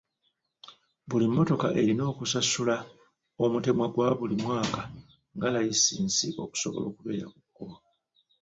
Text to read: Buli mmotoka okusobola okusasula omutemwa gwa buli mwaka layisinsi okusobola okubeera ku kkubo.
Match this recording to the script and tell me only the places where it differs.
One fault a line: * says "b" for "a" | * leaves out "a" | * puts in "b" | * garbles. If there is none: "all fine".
* says "erina" for "okusobola"
* puts in "nga"